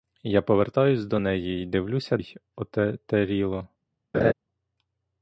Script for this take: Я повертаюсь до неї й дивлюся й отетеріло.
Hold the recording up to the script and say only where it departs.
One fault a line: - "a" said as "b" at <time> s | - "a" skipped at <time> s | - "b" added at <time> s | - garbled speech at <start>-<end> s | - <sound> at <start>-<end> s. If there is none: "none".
- laugh at 4.1-4.3 s